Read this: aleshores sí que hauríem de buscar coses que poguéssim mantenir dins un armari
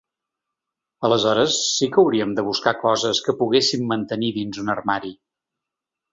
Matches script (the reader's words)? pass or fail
pass